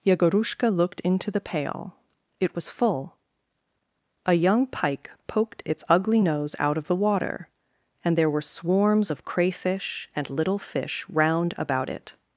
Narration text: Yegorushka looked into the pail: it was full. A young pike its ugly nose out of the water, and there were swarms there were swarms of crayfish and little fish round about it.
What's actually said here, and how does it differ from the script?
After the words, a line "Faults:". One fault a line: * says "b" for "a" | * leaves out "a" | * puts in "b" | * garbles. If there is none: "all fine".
Yegorushka looked into the pail: it was full. A young pike poked its ugly nose out of the water, and there were swarms of crayfish and little fish round about it.
Faults:
* puts in "poked"
* leaves out "there were swarms"